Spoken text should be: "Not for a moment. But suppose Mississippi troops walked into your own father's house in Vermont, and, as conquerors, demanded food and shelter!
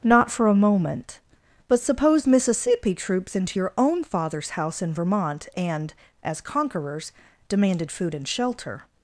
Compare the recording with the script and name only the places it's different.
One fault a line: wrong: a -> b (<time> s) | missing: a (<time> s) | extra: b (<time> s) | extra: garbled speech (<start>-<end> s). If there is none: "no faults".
missing: walked (3.4 s)